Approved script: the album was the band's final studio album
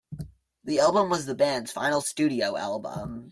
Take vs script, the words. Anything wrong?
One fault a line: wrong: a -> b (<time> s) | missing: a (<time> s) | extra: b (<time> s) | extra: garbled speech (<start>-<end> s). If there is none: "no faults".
no faults